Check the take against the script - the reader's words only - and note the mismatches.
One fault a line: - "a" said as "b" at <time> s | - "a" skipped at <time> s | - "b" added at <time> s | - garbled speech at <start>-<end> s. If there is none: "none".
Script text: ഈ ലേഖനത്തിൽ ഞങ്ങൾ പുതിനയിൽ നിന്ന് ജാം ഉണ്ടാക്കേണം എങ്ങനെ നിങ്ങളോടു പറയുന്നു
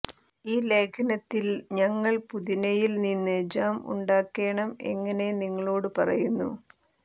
none